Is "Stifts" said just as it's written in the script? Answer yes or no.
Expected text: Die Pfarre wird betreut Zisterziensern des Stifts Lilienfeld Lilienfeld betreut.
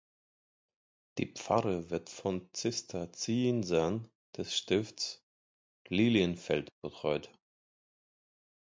yes